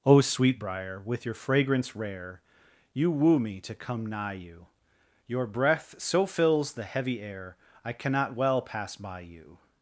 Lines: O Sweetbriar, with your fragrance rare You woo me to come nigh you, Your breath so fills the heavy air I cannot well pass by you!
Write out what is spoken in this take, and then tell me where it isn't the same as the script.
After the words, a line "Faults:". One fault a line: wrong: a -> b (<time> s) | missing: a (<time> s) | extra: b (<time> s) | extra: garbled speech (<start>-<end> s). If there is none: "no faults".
O Sweetbriar, with your fragrance rare You woo me to come nigh you, Your breath so fills the heavy air I cannot well pass by you!
Faults:
no faults